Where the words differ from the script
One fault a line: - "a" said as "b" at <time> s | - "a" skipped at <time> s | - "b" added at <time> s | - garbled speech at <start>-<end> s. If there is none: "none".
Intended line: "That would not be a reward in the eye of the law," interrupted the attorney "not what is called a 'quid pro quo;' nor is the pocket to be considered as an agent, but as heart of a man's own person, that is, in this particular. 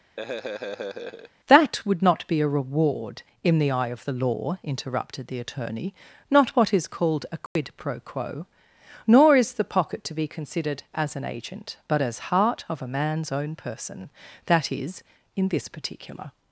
none